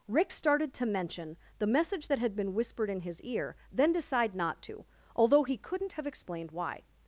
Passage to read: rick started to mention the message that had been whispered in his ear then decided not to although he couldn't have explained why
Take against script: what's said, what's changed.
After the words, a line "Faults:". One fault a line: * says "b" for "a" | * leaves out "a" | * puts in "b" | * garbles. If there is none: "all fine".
rick started to mention the message that had been whispered in his ear then decide not to although he couldn't have explained why
Faults:
* says "decide" for "decided"